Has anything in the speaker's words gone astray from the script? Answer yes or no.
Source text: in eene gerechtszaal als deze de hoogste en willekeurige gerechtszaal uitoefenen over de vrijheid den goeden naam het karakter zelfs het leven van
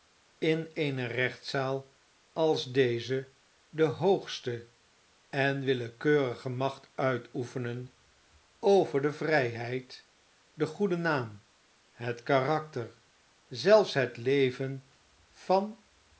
yes